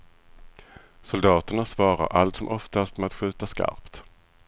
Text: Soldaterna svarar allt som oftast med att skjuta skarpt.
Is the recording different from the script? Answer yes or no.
no